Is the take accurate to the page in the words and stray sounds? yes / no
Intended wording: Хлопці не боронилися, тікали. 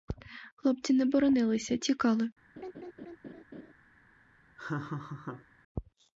no